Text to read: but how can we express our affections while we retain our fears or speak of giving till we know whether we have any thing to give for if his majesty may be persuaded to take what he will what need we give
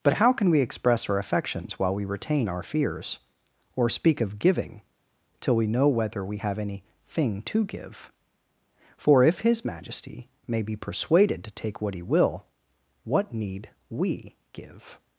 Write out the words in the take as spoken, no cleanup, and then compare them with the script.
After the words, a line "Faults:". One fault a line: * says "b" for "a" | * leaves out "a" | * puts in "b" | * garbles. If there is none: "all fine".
but how can we express our affections while we retain our fears or speak of giving till we know whether we have any thing to give for if his majesty may be persuaded to take what he will what need we give
Faults:
all fine